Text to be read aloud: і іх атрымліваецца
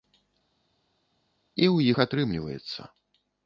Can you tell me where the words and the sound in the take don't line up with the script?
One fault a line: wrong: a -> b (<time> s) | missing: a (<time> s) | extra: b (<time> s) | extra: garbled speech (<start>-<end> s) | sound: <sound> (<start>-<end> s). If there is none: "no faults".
extra: ў (1.7 s)